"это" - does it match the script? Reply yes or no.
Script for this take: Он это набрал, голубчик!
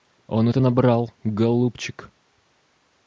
yes